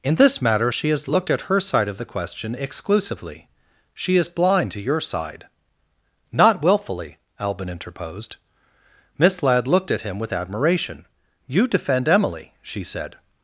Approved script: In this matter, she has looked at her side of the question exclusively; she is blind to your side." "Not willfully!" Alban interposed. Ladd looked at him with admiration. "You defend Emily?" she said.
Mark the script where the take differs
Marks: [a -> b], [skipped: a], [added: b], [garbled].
In this matter, she has looked at her side of the question exclusively; she is blind to your side." "Not willfully!" Alban interposed. [added: Miss] Ladd looked at him with admiration. "You defend Emily?" she said.